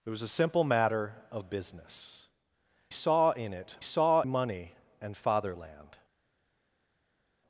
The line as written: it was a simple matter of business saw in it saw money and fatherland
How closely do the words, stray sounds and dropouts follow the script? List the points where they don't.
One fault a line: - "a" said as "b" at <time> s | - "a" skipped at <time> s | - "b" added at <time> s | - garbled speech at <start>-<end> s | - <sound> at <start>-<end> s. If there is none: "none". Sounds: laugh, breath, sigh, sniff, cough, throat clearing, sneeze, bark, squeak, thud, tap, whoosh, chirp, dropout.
none